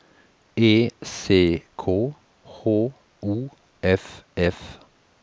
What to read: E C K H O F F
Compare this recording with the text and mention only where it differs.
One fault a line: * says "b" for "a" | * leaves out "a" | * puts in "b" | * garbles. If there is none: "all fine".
all fine